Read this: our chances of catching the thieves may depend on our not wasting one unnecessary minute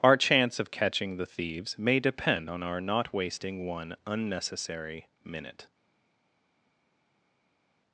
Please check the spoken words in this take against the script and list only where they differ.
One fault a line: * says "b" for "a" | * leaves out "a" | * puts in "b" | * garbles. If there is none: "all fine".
* says "chance" for "chances"